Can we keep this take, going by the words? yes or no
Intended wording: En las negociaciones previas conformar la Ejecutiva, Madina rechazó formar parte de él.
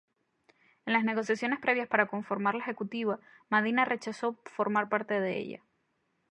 no